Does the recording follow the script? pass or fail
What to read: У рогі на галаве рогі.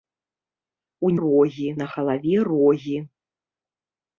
pass